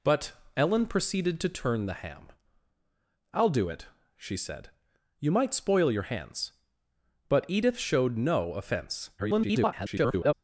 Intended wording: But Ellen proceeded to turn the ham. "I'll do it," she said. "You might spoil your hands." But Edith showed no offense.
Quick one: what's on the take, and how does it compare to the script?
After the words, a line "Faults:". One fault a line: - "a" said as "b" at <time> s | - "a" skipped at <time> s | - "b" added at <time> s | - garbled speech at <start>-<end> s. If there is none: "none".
But Ellen proceeded to turn the ham. "I'll do it," she said. "You might spoil your hands." But Edith showed no offense. [garbled]
Faults:
- garbled speech at 9.2-10.3 s